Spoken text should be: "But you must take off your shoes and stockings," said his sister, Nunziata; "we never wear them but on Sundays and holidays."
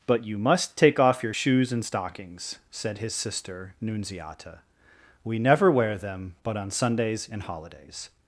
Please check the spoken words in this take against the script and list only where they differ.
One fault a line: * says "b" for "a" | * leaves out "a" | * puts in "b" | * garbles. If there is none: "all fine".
all fine